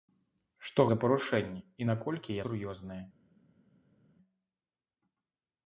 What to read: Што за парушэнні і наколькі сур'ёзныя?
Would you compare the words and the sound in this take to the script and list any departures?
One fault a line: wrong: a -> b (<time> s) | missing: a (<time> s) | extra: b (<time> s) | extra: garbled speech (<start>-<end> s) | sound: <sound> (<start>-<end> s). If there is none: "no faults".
no faults